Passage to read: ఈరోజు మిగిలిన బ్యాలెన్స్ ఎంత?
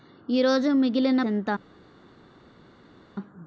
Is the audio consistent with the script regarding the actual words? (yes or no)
no